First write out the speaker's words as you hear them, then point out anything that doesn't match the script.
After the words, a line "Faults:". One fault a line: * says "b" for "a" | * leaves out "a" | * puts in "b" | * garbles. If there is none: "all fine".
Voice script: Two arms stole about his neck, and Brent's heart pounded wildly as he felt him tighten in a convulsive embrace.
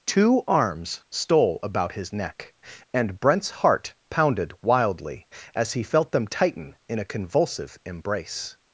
Two arms stole about his neck, and Brent's heart pounded wildly as he felt them tighten in a convulsive embrace.
Faults:
* says "them" for "him"